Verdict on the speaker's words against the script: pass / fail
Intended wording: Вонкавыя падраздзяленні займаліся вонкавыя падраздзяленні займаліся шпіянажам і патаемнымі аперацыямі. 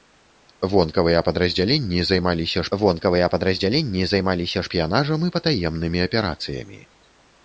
pass